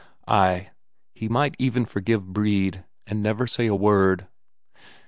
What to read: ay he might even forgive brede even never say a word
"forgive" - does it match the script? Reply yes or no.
yes